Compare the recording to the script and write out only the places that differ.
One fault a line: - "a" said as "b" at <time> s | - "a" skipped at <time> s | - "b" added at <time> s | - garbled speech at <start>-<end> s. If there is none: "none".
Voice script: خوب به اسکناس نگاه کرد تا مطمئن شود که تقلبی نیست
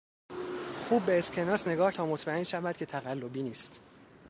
- "کرد" skipped at 1.9 s